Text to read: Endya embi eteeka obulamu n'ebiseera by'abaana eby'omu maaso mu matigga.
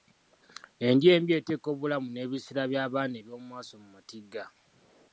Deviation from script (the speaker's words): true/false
false